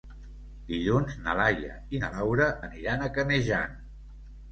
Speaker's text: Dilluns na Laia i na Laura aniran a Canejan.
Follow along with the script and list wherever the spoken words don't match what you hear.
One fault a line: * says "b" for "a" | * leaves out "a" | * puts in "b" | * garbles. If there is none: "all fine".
all fine